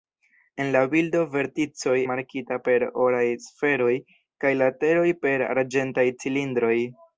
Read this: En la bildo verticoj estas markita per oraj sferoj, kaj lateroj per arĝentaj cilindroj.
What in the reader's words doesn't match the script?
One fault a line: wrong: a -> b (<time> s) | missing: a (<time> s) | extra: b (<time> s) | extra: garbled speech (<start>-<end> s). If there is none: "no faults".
missing: estas (2.0 s)